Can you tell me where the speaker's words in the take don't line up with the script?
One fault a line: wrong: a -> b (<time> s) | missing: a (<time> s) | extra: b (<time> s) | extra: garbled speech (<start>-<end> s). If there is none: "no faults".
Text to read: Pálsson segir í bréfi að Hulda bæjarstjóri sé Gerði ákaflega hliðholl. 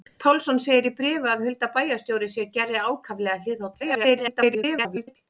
extra: garbled speech (3.8-5.2 s)